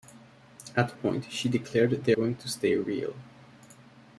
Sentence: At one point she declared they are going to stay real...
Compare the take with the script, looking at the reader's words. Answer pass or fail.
fail